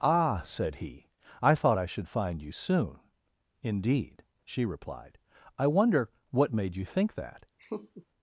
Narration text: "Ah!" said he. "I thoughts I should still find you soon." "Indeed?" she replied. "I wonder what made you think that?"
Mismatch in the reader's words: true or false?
true